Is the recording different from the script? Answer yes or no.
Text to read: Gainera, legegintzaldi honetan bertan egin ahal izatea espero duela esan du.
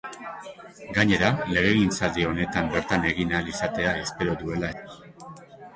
yes